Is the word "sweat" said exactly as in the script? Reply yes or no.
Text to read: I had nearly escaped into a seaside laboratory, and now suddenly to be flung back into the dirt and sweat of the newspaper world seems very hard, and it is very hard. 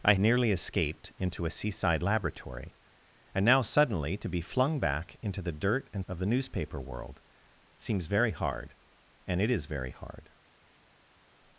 no